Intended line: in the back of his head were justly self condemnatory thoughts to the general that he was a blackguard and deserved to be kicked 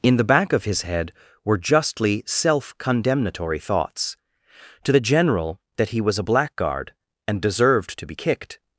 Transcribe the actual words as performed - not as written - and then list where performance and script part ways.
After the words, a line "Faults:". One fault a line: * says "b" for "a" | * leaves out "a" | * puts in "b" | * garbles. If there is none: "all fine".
in the back of his head were justly self condemnatory thoughts to the general that he was a blackguard and deserved to be kicked
Faults:
all fine